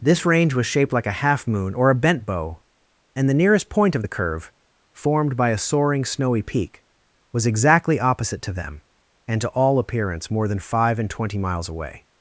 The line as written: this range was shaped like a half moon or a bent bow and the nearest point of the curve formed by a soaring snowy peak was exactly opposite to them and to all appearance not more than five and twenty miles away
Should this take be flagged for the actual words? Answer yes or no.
yes